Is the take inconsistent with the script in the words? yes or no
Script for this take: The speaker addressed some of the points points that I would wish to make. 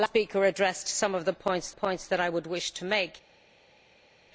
no